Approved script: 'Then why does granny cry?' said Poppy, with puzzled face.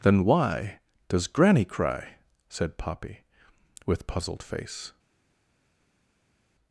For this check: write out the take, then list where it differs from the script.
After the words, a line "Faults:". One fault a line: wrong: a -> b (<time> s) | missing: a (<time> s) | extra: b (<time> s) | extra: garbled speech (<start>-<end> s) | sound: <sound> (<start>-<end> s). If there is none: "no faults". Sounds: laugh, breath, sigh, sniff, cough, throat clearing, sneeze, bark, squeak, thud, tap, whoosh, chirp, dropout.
'Then why does granny cry?' said Poppy, with puzzled face.
Faults:
no faults